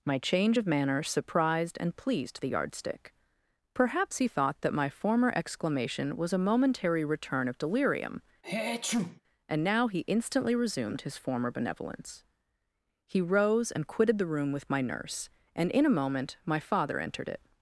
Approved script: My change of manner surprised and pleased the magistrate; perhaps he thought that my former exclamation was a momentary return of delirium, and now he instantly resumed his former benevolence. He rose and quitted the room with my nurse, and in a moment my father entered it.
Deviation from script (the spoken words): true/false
true